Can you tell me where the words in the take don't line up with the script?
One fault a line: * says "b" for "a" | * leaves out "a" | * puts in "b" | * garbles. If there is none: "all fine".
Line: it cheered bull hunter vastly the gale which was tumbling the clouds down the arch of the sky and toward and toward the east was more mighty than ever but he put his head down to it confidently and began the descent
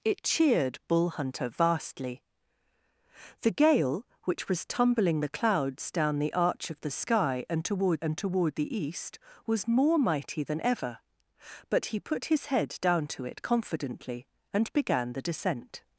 all fine